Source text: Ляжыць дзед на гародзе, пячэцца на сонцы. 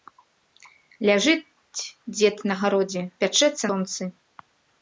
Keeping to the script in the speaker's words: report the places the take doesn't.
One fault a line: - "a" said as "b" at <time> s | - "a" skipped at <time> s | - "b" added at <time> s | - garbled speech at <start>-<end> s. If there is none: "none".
- "на" skipped at 3.6 s